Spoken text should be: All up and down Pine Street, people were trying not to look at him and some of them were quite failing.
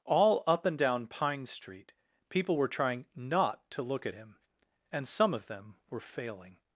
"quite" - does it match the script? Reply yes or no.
no